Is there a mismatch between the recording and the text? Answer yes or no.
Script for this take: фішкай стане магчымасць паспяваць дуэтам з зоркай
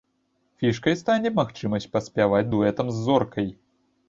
no